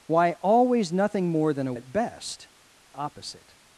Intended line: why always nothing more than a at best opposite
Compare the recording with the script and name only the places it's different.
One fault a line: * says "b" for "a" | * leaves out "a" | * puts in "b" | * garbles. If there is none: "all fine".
all fine